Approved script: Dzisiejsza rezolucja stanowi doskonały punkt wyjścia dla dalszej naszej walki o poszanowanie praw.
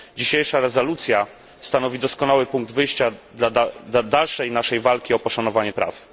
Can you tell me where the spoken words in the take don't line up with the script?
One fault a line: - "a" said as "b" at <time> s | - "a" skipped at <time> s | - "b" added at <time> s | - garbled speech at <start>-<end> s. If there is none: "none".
none